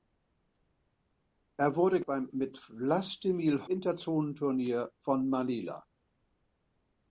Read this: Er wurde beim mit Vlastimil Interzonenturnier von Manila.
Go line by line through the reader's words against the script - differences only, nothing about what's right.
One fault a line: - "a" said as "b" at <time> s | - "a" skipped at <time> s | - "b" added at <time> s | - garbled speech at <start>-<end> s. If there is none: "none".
none